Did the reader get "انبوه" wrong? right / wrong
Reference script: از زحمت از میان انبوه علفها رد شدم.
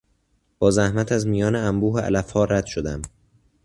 right